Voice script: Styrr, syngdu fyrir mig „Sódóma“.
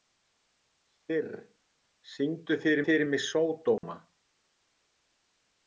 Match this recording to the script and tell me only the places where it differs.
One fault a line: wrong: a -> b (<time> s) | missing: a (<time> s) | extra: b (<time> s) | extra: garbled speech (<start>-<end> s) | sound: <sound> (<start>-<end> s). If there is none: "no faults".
extra: fyrir (2.9 s)
sound: dropout (3.8-3.8 s)